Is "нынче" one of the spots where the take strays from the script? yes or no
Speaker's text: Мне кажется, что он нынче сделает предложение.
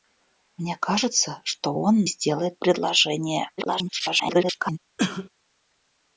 yes